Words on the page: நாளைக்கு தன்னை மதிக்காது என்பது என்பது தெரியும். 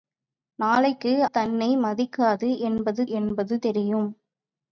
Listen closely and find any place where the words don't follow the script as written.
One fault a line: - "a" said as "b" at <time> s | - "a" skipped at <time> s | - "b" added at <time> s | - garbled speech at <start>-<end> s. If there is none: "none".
none